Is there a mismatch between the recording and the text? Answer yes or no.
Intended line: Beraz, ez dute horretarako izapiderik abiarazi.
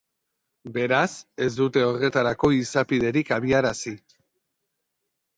no